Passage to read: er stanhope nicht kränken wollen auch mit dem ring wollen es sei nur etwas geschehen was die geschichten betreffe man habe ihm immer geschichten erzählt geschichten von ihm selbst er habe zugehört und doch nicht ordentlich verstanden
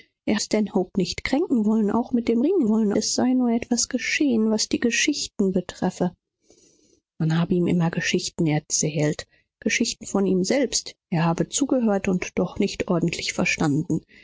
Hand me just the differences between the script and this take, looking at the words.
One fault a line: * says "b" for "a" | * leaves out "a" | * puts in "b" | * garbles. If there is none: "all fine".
all fine